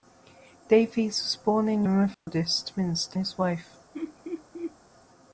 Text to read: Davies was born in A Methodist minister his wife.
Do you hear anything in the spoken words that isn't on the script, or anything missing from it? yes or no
no